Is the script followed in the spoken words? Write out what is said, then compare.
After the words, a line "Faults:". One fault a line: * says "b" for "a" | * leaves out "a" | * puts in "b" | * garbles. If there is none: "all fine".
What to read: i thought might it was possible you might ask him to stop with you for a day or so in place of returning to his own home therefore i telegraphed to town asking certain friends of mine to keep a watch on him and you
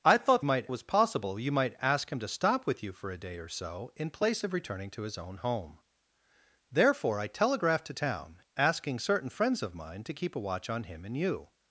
i thought might it was possible you might ask him to stop with you for a day or so in place of returning to his own home therefore i telegraphed to town asking certain friends of mine to keep a watch on him and you
Faults:
all fine